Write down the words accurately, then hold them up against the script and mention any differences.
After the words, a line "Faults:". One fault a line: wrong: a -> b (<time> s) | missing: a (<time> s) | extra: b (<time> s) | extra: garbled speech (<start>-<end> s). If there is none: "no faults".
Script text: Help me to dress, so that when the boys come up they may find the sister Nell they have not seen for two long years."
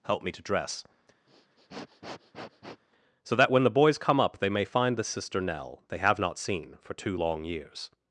Help me to dress, so that when the boys come up they may find the sister Nell they have not seen for two long years."
Faults:
no faults